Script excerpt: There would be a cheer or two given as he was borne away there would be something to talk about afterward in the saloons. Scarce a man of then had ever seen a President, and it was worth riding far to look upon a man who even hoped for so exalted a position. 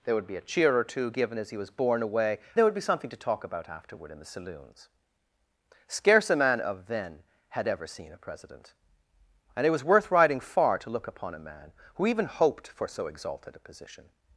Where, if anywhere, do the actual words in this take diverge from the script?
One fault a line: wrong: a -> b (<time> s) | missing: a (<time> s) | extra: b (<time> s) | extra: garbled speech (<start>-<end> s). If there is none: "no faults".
no faults